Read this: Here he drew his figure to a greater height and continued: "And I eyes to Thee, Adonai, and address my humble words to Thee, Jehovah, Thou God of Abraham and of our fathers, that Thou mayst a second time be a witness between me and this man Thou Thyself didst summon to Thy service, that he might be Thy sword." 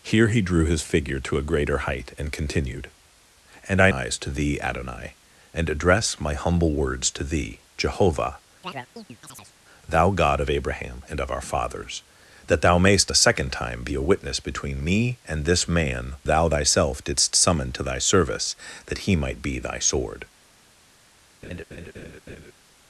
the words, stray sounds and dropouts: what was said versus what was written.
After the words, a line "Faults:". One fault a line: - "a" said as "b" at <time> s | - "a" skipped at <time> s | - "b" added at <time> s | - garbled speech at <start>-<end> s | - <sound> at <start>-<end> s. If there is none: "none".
Here he drew his figure to a greater height and continued: "And I eyes to Thee, Adonai, and address my humble words to Thee, Jehovah, Thou God of Abraham and of our fathers, that Thou mayst a second time be a witness between me and this man Thou Thyself didst summon to Thy service, that he might be Thy sword."
Faults:
- chirp at 8.6-9.5 s
- laugh at 21.4-22.5 s